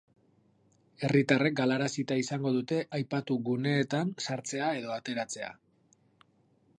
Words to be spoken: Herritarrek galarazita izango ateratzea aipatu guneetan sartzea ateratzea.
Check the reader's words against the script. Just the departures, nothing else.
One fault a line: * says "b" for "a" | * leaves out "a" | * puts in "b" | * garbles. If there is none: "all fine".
* says "dute" for "ateratzea"
* puts in "edo"